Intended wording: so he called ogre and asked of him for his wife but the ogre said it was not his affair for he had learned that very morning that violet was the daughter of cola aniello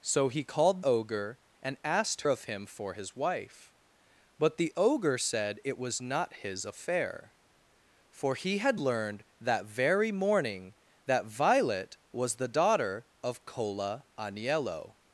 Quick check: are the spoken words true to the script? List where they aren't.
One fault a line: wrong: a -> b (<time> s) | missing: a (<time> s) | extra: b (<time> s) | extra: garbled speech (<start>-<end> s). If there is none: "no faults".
no faults